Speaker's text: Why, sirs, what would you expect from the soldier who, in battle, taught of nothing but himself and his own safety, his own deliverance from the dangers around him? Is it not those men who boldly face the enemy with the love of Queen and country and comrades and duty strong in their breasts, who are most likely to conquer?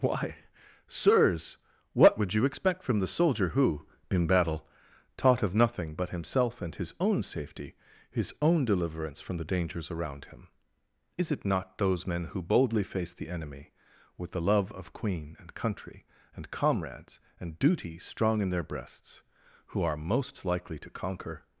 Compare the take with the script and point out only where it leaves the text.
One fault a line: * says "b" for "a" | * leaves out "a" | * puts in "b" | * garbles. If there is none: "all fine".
all fine